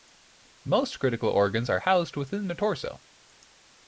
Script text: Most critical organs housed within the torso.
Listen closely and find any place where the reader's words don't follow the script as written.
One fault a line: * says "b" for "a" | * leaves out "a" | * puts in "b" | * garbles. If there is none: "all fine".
* puts in "are"